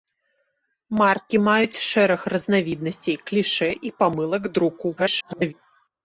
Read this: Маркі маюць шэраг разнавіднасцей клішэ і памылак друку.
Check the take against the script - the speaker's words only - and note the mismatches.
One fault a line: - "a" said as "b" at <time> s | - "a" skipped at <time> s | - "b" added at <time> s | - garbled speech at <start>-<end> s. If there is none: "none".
- garbled speech at 5.0-5.5 s